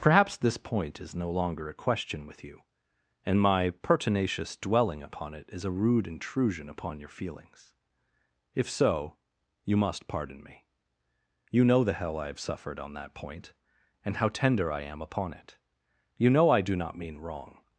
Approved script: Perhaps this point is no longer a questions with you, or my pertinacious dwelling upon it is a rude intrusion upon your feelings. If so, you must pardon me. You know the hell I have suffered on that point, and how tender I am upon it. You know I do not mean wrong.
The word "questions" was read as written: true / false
false